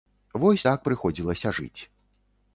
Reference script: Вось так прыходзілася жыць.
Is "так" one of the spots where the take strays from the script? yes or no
no